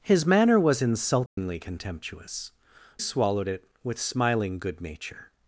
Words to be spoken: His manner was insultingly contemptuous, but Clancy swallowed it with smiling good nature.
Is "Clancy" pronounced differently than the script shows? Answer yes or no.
yes